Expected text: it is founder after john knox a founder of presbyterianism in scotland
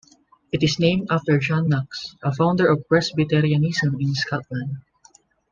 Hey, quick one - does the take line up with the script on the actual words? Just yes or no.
no